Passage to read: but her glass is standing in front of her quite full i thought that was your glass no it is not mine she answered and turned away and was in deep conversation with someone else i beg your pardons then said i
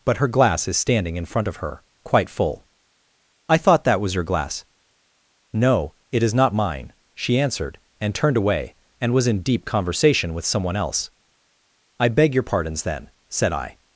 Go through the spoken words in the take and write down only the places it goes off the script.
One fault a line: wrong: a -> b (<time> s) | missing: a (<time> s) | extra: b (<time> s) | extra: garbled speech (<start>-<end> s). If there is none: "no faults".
no faults